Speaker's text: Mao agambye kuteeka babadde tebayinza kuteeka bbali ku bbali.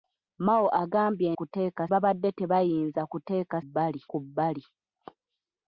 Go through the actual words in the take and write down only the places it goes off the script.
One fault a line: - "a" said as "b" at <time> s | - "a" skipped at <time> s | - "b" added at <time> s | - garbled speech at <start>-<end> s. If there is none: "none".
none